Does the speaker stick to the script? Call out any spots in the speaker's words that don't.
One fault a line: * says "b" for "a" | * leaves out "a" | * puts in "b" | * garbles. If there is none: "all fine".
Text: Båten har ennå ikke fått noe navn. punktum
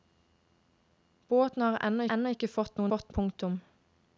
* puts in "ennå"
* says "fått" for "navn"